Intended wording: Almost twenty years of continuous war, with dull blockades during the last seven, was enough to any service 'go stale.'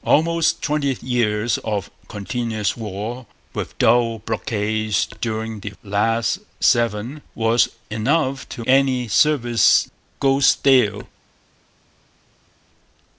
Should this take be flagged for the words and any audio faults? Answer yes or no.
no